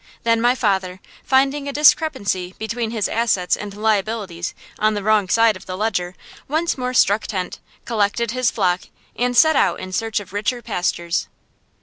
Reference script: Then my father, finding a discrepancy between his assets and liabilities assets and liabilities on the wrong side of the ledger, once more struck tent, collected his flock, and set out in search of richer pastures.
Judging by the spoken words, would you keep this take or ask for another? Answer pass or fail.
fail